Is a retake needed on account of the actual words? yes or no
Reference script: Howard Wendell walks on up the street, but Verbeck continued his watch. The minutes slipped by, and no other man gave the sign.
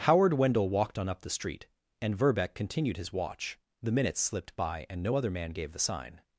yes